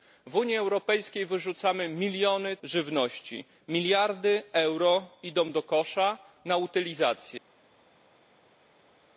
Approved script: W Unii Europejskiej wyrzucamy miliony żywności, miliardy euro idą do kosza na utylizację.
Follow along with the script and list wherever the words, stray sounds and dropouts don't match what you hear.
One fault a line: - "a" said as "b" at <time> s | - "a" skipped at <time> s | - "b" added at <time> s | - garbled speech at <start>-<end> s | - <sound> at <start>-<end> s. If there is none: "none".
none